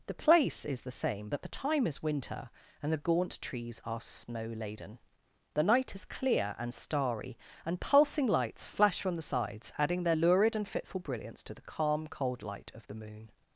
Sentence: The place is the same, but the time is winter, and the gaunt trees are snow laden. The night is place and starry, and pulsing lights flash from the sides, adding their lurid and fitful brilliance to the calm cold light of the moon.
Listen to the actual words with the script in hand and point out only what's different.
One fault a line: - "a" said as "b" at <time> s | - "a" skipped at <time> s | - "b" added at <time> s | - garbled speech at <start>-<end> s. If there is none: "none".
- "place" said as "clear" at 6.0 s